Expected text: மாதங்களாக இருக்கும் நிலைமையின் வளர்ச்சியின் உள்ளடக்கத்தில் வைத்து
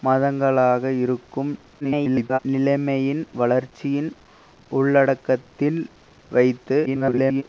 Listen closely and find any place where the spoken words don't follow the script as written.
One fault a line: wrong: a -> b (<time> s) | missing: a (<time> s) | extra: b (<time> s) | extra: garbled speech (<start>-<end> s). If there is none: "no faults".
extra: garbled speech (1.8-2.4 s)
extra: garbled speech (6.9-7.4 s)